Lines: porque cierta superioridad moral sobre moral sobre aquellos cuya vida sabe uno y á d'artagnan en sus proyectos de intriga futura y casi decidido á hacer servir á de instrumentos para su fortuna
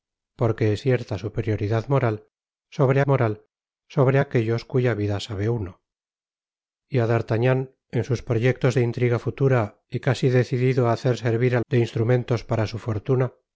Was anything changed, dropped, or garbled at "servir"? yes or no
no